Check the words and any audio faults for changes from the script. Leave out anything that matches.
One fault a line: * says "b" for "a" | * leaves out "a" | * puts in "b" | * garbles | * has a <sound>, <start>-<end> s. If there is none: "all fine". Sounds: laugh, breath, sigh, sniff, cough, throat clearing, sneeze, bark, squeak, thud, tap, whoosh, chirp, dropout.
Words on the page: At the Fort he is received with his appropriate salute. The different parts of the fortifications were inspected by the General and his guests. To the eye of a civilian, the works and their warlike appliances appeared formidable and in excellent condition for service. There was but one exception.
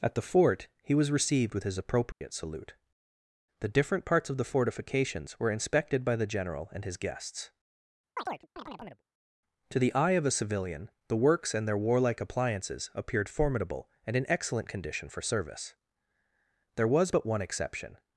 * says "was" for "is"
* has a dropout, 2.1-2.2 s
* has a chirp, 8.2-9.0 s